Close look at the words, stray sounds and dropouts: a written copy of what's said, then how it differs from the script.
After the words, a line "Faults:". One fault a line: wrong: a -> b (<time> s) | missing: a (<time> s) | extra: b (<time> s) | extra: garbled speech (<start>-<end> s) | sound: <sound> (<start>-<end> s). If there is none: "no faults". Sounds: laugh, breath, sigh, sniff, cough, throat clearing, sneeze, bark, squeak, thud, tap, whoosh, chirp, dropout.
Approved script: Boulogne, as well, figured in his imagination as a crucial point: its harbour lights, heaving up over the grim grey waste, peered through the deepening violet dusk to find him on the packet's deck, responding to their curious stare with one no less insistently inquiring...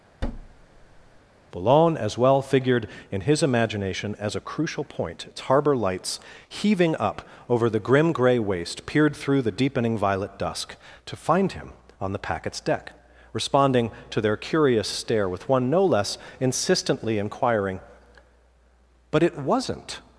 Boulogne, as well, figured in his imagination as a crucial point: its harbour lights, heaving up over the grim grey waste, peered through the deepening violet dusk to find him on the packet's deck, responding to their curious stare with one no less insistently inquiring... But it wasn't
Faults:
sound: thud (0.2-1.2 s)
extra: But it wasn't (19.1 s)